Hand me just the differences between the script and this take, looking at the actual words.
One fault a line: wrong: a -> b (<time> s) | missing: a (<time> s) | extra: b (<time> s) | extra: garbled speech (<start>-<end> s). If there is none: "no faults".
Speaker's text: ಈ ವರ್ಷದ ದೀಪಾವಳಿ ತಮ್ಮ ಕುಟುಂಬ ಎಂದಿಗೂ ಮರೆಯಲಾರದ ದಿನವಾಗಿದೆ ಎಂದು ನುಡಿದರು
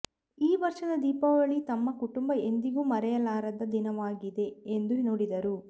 no faults